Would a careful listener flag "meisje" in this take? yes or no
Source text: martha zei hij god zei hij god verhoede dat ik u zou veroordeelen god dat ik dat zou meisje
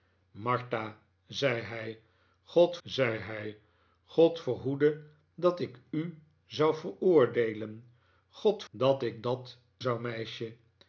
no